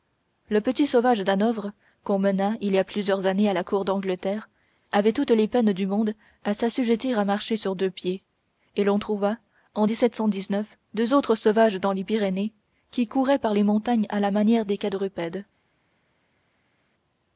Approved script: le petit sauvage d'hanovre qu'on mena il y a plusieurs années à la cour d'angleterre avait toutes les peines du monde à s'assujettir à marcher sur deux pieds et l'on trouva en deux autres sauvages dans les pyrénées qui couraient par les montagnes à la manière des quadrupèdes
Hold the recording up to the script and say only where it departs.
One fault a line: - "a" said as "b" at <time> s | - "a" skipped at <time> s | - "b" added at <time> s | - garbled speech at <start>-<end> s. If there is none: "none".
none